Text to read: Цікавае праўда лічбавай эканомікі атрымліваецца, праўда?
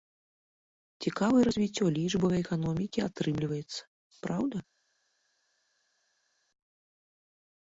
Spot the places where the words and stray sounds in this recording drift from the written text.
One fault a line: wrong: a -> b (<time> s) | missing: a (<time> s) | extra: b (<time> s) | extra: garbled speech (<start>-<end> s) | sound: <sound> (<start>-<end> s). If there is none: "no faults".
wrong: праўда -> развіццё (1.5 s)